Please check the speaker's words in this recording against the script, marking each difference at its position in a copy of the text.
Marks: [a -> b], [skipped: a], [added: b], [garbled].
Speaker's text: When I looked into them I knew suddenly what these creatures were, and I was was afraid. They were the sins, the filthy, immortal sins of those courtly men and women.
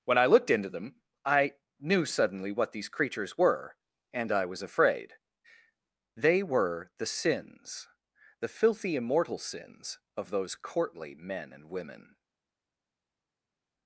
When I looked into them I knew suddenly what these creatures were, and I was [skipped: was] afraid. They were the sins, the filthy, immortal sins of those courtly men and women.